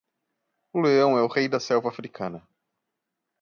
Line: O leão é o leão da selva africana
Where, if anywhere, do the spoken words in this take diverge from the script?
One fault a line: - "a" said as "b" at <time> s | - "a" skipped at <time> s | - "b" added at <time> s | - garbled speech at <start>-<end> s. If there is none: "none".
- "leão" said as "rei" at 1.3 s